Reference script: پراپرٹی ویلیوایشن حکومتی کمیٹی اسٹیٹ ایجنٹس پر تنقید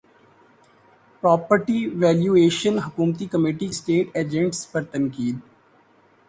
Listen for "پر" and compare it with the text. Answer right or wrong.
right